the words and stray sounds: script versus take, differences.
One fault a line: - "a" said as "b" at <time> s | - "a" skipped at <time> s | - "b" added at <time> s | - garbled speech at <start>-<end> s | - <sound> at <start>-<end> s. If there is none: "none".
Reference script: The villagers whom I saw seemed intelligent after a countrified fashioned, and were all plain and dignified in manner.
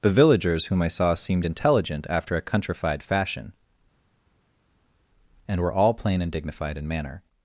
- "fashioned" said as "fashion" at 3.0 s